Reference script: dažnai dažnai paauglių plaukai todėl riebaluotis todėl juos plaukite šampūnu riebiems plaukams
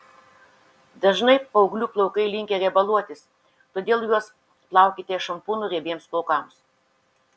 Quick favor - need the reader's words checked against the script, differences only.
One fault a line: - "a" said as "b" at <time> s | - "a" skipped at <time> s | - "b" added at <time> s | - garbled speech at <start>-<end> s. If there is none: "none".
- "dažnai" skipped at 1.4 s
- "todėl" said as "linkę" at 2.4 s